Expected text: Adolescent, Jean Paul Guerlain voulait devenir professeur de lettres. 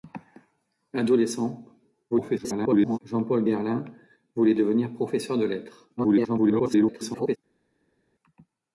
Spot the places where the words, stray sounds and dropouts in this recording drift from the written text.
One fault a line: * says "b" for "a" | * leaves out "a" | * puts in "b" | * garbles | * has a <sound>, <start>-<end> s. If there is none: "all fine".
* garbles
* garbles